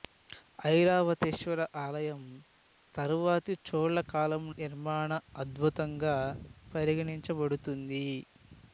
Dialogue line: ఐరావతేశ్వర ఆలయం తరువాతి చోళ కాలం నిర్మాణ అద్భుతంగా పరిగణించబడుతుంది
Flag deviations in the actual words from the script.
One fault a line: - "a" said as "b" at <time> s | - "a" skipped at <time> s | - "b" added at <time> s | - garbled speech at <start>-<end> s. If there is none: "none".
none